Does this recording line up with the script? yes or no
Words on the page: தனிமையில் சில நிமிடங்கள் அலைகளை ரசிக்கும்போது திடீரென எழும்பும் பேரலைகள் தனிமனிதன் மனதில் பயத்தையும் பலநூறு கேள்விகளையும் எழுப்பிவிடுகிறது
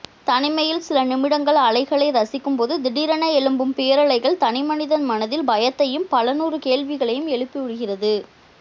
yes